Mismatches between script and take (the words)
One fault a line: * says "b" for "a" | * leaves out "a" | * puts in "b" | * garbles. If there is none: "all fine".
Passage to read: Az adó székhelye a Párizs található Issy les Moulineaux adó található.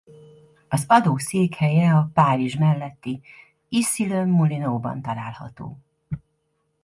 * says "melletti" for "található"
* says "ban" for "adó"